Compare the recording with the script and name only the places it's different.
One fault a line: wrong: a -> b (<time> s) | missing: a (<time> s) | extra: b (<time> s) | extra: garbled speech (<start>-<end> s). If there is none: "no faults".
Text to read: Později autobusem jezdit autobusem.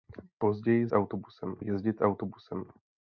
no faults